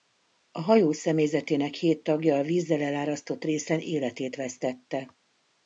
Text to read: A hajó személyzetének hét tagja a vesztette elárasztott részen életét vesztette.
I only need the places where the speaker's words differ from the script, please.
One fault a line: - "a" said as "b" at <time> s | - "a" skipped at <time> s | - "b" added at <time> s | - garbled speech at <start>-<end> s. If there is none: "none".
- "vesztette" said as "vízzel" at 2.4 s